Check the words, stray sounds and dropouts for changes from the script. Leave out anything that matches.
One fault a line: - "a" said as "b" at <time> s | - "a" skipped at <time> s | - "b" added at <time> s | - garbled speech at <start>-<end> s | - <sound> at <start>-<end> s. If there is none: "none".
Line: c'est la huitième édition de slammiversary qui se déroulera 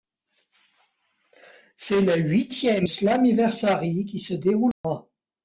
- "édition de" skipped at 2.9 s
- dropout at 4.7-4.8 s